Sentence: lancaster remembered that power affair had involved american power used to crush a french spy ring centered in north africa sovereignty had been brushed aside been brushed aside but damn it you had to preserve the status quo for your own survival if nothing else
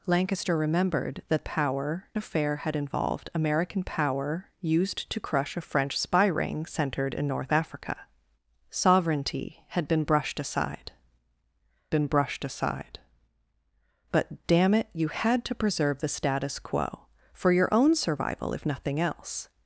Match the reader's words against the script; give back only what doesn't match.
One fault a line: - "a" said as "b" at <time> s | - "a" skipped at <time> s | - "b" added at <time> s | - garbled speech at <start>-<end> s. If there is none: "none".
none